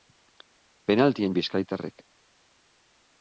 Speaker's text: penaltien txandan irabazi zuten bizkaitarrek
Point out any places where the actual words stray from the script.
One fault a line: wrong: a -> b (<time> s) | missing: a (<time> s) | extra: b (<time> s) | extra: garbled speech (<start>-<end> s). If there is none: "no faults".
missing: txandan irabazi zuten (1.4 s)